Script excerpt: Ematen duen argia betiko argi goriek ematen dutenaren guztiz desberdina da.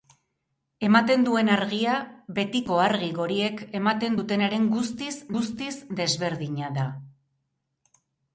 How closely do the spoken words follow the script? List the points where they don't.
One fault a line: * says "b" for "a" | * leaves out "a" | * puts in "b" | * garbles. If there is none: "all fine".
* puts in "guztiz"